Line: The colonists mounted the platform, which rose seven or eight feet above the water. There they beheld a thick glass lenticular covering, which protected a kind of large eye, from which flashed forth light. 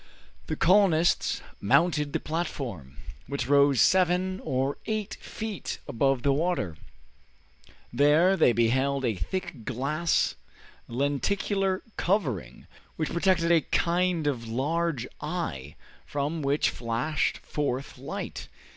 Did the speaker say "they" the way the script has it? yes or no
yes